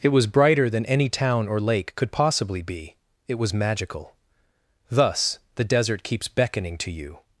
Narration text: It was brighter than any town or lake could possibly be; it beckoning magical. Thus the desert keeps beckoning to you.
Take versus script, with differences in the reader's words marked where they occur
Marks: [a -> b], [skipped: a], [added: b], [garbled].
It was brighter than any town or lake could possibly be; it [beckoning -> was] magical. Thus the desert keeps beckoning to you.